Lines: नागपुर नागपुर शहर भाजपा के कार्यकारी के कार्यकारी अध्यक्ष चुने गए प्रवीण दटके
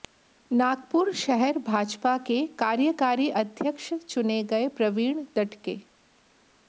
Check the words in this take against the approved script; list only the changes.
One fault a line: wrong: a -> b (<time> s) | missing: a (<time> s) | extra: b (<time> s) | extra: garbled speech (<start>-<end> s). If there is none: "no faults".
missing: नागपुर (1.1 s)
missing: के कार्यकारी (3.3 s)